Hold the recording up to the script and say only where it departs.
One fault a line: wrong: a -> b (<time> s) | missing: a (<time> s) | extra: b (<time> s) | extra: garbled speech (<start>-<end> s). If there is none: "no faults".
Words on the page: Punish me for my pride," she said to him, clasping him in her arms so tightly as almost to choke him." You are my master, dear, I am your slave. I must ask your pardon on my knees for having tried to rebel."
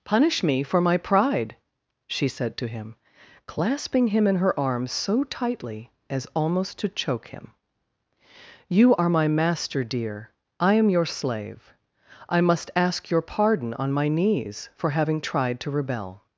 no faults